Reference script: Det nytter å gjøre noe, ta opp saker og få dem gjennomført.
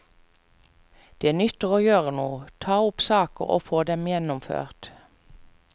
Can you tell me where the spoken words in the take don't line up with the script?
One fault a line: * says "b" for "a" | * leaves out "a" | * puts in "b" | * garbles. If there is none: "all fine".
all fine